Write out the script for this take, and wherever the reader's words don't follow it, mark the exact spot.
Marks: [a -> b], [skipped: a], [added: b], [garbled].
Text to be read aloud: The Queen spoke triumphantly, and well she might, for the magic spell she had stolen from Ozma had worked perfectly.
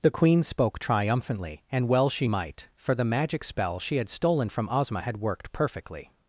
The Queen spoke triumphantly, and well she might, for the magic spell she had stolen from Ozma had worked perfectly.